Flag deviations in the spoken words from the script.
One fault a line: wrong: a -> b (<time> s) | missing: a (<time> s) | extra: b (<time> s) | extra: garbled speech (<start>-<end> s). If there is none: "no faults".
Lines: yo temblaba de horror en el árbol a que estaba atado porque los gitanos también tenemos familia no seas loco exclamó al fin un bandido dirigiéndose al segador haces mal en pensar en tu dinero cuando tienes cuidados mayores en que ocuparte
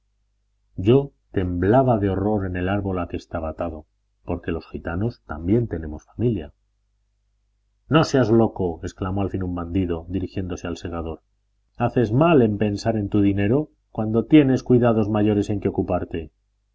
no faults